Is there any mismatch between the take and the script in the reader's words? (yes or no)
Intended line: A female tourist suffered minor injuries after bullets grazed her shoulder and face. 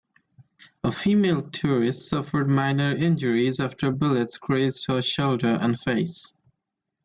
no